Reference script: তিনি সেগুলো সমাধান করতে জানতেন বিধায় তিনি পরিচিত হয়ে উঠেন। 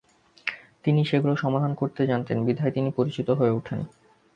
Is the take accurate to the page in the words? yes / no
yes